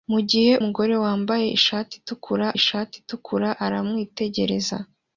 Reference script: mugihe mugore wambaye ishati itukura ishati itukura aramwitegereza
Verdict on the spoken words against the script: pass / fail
pass